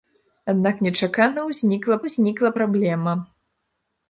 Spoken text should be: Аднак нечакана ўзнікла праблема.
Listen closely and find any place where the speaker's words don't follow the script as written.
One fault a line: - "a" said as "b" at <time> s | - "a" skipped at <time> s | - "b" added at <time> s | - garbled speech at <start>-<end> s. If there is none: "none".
- "ўзнікла" added at 2.1 s